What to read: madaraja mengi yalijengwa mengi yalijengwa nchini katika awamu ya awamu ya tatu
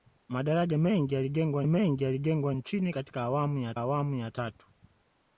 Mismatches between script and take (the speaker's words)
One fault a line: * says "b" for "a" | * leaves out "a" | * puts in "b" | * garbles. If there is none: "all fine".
all fine